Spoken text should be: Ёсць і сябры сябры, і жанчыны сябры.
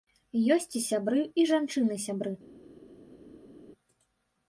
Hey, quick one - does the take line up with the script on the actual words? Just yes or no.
no